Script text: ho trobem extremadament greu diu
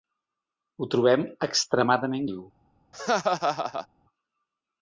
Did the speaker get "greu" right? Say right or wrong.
wrong